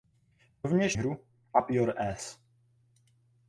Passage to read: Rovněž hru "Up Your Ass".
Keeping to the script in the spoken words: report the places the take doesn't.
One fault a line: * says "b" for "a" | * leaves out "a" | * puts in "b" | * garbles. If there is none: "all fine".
all fine